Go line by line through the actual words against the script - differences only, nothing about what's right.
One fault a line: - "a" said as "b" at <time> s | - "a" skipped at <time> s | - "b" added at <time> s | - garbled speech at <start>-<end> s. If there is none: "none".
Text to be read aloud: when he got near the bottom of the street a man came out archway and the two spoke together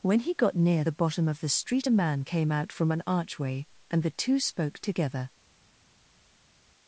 - "from an" added at 2.7 s